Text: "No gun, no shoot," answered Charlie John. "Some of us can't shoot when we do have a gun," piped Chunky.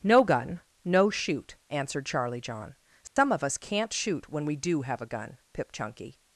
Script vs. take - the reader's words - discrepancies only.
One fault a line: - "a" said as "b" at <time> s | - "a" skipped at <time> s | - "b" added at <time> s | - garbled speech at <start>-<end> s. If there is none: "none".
- "piped" said as "pip" at 5.5 s